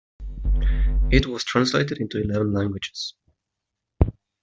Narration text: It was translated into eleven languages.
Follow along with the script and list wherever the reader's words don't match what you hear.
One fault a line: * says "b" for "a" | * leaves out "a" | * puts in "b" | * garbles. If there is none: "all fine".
all fine